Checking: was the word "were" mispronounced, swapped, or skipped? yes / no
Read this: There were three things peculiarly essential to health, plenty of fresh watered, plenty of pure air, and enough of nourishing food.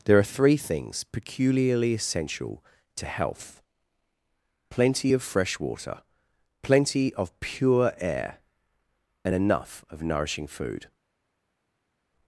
yes